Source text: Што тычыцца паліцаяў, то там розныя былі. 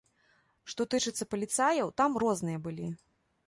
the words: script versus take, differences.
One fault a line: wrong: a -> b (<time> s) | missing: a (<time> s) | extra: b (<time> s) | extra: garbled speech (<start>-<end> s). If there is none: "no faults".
missing: то (1.9 s)